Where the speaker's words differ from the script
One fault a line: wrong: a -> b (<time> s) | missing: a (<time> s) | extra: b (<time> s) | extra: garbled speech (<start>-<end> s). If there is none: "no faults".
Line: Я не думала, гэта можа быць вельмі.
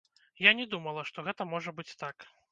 extra: што (1.1 s)
wrong: вельмі -> так (2.1 s)